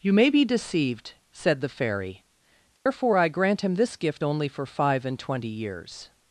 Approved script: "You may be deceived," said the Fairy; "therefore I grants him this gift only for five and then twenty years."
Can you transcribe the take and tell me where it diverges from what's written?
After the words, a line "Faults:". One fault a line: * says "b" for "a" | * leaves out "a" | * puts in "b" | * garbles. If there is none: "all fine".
"You may be deceived," said the Fairy; "therefore I grant him this gift only for five and twenty years."
Faults:
* says "grant" for "grants"
* leaves out "then"